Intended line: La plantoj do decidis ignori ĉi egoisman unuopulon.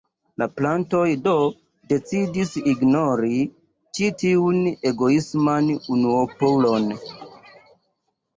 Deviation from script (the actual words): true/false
true